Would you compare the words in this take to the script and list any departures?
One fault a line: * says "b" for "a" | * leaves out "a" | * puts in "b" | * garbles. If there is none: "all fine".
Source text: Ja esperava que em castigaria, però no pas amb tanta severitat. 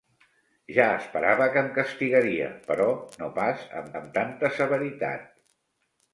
* puts in "amb"